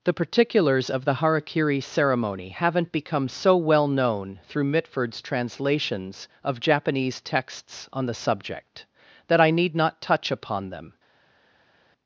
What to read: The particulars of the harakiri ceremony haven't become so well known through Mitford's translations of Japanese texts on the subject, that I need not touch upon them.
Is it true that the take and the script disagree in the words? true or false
false